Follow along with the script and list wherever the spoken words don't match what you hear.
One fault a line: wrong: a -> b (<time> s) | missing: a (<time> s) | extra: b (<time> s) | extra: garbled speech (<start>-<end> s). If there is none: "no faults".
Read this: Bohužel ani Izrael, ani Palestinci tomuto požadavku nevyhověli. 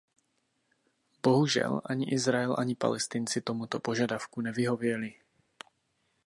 no faults